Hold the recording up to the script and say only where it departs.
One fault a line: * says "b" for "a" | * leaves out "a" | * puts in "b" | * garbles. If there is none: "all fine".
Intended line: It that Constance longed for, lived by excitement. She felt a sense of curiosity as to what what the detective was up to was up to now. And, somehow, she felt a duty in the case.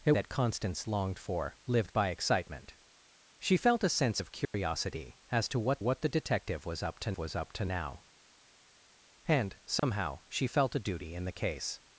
all fine